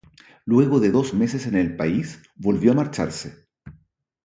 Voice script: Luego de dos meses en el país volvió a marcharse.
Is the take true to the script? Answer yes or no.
yes